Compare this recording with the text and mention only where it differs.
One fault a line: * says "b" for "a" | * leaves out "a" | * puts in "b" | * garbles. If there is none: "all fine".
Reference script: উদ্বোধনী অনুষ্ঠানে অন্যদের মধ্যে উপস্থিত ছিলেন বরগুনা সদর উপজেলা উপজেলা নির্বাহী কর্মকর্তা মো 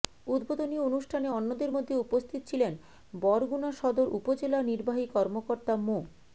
* leaves out "উপজেলা"